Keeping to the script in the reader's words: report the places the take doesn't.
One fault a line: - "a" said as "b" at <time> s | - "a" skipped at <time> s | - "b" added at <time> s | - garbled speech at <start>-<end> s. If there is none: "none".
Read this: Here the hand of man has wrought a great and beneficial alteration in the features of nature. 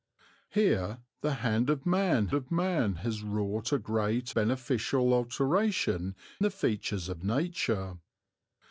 - "of man" added at 2.3 s
- "and" skipped at 4.3 s
- "in" skipped at 6.2 s